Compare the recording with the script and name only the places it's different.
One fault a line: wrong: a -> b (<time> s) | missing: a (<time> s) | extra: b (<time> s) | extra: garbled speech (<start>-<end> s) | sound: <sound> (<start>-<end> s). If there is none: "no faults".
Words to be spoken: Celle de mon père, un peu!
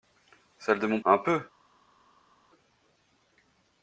missing: père (1.0 s)